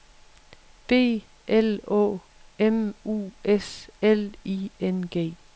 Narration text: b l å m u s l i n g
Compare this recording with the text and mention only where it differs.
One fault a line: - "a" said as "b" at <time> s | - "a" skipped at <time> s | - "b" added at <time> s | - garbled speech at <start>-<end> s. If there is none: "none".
none